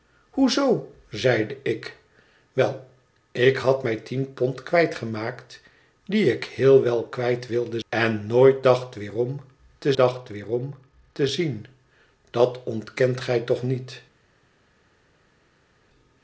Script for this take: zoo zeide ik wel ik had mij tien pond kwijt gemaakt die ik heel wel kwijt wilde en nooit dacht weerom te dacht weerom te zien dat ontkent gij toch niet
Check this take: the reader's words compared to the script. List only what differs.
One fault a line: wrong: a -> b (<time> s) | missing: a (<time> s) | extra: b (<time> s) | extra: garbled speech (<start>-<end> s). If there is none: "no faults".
no faults